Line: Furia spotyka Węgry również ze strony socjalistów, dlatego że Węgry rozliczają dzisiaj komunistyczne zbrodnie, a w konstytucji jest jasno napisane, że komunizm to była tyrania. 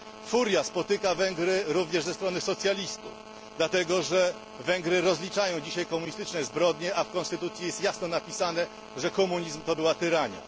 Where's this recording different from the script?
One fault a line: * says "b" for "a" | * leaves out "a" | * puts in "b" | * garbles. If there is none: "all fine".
all fine